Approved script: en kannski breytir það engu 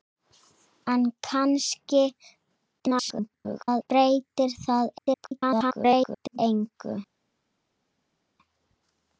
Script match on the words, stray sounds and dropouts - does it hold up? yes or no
no